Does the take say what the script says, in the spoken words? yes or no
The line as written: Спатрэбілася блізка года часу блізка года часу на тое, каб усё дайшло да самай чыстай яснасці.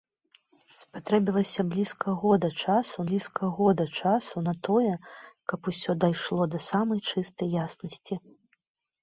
yes